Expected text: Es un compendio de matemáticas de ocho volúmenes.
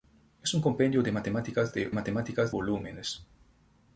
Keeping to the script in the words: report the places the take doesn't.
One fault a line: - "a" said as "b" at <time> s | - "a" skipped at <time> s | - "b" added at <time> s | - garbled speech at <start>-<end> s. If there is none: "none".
- "ocho" said as "matemáticas" at 1.9 s